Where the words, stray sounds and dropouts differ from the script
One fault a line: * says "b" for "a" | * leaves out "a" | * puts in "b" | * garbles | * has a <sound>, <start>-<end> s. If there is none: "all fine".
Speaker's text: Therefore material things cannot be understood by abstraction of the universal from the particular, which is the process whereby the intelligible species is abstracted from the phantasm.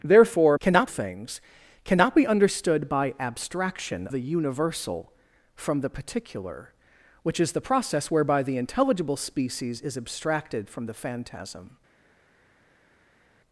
* says "cannot" for "material"
* leaves out "of"